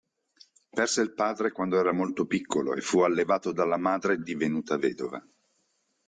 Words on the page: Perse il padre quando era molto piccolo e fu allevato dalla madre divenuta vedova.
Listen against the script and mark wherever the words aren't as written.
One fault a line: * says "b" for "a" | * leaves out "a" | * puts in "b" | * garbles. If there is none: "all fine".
all fine